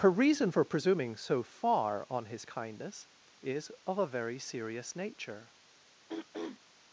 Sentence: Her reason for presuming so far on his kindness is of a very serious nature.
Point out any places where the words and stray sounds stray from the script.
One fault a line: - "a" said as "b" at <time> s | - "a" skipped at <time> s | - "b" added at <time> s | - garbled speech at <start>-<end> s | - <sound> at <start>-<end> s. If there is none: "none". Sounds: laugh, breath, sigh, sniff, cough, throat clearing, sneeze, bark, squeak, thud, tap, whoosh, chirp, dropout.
- throat clearing at 6.1-6.6 s